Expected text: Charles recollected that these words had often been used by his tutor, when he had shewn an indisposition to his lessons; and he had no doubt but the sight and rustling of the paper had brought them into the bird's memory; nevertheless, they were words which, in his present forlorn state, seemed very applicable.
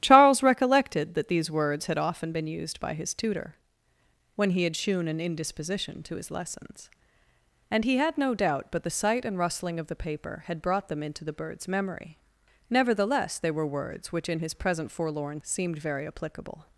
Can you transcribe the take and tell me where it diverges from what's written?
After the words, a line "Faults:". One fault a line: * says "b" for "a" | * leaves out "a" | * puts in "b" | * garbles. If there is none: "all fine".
Charles recollected that these words had often been used by his tutor, when he had shewn an indisposition to his lessons; and he had no doubt but the sight and rustling of the paper had brought them into the bird's memory; nevertheless, they were words which, in his present forlorn seemed very applicable.
Faults:
* leaves out "state"